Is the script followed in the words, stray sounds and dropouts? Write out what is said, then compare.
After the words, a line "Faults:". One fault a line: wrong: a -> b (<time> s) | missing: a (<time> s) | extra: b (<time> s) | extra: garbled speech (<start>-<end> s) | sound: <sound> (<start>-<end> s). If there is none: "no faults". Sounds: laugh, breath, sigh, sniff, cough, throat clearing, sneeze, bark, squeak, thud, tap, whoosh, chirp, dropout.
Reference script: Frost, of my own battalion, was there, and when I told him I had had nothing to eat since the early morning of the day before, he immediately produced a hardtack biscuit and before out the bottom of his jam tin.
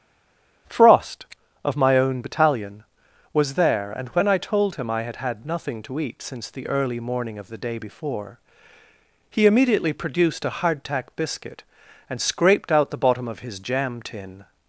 Frost, of my own battalion, was there, and when I told him I had had nothing to eat since the early morning of the day before, he immediately produced a hardtack biscuit and scraped out the bottom of his jam tin.
Faults:
wrong: before -> scraped (12.2 s)